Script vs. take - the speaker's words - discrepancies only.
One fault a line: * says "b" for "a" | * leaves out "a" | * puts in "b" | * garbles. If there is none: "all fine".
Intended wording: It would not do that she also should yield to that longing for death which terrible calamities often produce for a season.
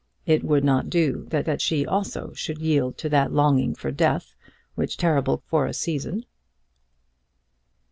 * puts in "that"
* leaves out "calamities often produce"